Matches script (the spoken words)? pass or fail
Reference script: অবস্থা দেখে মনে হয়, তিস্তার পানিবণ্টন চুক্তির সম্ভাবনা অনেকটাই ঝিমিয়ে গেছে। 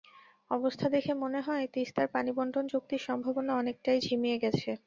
pass